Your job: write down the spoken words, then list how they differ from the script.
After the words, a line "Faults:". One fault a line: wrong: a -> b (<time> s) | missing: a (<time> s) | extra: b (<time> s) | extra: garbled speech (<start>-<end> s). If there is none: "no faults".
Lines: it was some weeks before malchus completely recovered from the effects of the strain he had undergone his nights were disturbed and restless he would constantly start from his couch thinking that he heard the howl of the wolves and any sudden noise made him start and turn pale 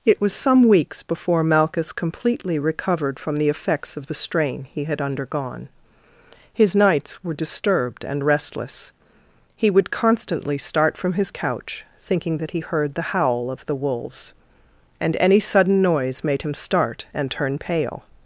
it was some weeks before malchus completely recovered from the effects of the strain he had undergone his nights were disturbed and restless he would constantly start from his couch thinking that he heard the howl of the wolves and any sudden noise made him start and turn pale
Faults:
no faults